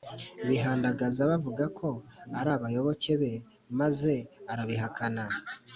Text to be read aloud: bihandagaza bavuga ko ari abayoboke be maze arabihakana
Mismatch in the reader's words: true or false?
false